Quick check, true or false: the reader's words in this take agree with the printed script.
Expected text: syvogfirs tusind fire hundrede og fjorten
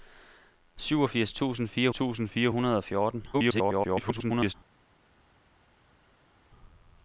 false